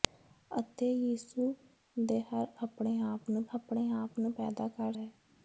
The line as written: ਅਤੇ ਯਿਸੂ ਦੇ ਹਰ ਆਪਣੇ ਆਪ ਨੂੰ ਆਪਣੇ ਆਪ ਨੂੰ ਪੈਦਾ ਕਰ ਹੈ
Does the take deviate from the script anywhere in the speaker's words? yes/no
no